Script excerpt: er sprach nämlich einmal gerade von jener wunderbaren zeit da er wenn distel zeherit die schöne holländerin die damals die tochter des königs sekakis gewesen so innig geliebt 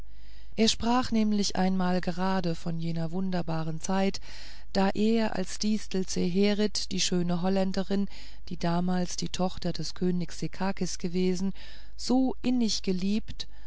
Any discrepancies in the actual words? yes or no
yes